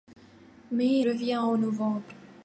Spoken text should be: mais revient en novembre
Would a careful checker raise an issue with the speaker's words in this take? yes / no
no